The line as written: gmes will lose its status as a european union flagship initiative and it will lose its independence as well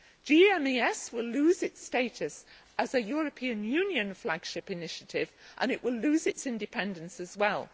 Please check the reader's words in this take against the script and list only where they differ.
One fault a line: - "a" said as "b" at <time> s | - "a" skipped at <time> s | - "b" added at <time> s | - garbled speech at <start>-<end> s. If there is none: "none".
none